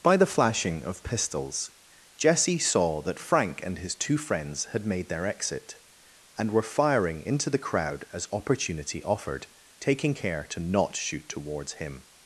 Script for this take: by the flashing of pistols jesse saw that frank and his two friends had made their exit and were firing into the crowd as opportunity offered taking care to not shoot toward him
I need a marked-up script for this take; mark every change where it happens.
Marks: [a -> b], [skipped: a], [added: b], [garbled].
by the flashing of pistols jesse saw that frank and his two friends had made their exit and were firing into the crowd as opportunity offered taking care to not shoot [toward -> towards] him